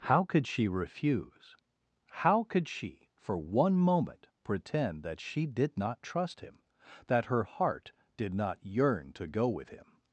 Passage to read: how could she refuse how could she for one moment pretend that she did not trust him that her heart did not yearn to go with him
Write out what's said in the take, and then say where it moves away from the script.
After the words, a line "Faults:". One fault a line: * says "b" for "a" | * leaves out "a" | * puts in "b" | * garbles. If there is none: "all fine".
how could she refuse how could she for one moment pretend that she did not trust him that her heart did not yearn to go with him
Faults:
all fine